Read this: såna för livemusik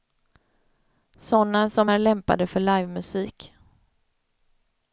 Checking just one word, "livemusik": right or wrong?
right